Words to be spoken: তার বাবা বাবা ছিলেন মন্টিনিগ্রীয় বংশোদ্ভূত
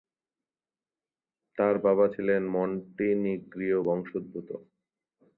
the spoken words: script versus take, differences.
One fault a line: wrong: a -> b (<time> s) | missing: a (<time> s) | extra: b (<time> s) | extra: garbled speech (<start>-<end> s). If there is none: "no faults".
missing: বাবা (2.0 s)